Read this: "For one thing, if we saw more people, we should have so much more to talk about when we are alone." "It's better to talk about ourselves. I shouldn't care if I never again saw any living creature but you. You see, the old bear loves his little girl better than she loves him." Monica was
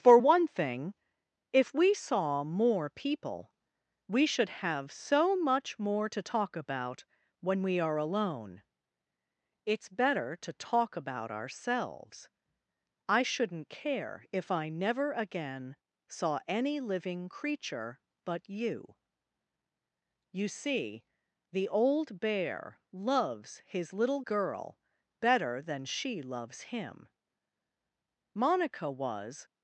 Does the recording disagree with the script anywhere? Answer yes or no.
no